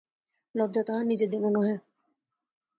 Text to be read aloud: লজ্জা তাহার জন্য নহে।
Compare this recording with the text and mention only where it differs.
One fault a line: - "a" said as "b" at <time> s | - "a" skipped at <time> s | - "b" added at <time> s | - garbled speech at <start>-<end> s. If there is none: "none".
- "নিজের" added at 1.1 s